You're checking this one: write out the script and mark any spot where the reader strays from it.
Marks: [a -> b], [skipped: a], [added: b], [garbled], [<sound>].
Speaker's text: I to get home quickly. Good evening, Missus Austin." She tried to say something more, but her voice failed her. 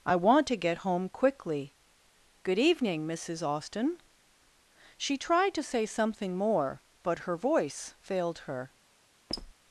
I [added: want] to get home quickly. Good evening, Missus Austin." She tried to say something more, but her voice failed her. [squeak]